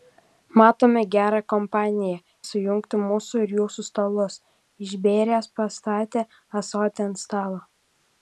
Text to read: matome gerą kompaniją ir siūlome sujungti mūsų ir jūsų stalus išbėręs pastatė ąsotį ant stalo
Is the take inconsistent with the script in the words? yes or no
yes